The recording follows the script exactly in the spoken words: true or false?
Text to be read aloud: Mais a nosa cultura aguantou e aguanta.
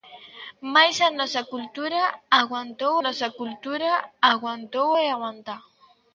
false